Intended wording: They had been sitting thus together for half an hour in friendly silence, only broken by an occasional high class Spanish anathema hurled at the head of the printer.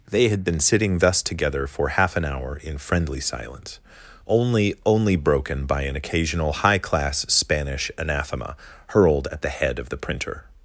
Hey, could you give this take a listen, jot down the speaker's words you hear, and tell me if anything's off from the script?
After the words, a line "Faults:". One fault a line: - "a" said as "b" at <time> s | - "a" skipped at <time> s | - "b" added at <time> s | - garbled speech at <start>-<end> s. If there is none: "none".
They had been sitting thus together for half an hour in friendly silence, only only broken by an occasional high class Spanish anathema hurled at the head of the printer.
Faults:
- "only" added at 4.8 s